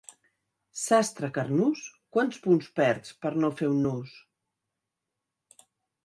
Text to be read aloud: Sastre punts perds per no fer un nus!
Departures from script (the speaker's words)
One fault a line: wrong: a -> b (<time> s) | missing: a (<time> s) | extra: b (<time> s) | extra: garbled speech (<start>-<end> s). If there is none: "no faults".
extra: carnús quants (1.3 s)